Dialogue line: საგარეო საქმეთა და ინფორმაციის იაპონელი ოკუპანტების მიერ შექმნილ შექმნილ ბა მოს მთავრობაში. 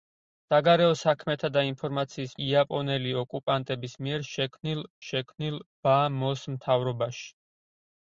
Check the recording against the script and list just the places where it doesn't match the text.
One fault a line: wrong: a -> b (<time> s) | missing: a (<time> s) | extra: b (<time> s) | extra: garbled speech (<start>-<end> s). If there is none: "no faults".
no faults